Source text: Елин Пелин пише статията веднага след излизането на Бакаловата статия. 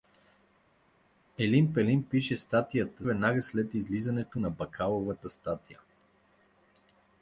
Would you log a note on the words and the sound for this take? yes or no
no